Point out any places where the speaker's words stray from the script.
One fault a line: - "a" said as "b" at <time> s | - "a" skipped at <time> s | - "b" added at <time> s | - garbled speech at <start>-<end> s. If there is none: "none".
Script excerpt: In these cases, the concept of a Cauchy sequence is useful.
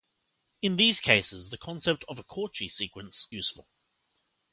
- "is" skipped at 3.3 s